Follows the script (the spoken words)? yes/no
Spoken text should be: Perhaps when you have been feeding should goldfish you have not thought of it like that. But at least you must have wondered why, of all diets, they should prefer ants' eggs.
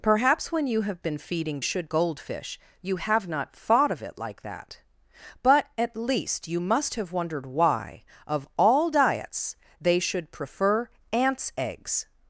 yes